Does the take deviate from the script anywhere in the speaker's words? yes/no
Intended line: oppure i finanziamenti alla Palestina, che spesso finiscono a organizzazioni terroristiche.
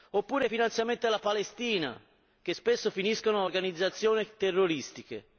no